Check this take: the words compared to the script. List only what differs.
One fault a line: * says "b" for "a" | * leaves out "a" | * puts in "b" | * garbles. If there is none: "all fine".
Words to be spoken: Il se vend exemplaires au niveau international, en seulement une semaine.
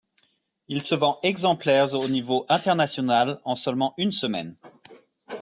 all fine